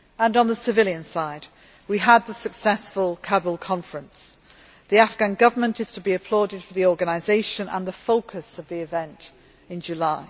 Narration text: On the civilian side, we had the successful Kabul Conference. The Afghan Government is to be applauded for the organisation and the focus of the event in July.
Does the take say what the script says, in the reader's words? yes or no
yes